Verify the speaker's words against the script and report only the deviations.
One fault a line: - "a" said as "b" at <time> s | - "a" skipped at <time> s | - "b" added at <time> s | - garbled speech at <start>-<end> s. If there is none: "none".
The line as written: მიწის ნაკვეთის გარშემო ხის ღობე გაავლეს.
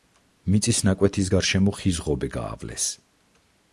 none